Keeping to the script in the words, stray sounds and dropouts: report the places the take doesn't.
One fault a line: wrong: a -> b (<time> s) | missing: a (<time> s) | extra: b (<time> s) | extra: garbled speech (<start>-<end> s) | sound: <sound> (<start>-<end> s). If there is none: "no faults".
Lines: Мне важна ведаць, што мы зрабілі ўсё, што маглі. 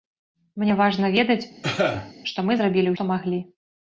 sound: cough (1.6-2.1 s)
missing: ўсё (2.9 s)